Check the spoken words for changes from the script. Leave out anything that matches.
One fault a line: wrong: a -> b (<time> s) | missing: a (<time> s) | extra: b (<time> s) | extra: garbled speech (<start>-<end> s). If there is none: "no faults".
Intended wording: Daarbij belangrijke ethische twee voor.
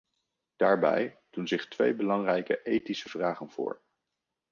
extra: doen zich twee (1.3 s)
wrong: twee -> vragen (3.1 s)